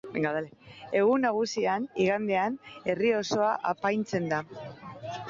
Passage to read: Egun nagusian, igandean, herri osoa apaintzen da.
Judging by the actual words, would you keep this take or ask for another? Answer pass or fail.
pass